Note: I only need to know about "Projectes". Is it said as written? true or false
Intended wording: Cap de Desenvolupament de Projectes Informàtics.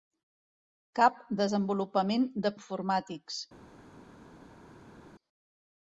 false